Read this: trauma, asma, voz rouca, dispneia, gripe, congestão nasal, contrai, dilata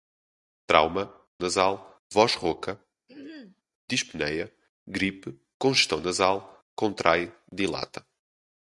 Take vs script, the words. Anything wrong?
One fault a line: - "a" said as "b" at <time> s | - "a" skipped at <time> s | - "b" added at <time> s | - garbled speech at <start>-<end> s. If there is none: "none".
- "asma" said as "nasal" at 1.4 s